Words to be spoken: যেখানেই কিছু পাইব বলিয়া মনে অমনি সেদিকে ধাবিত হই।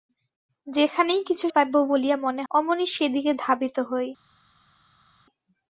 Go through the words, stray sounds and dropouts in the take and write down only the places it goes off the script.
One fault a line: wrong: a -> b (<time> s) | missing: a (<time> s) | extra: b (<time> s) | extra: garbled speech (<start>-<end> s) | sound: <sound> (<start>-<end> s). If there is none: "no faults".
no faults